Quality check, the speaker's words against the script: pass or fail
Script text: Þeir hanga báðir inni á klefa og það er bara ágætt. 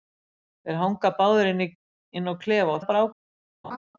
fail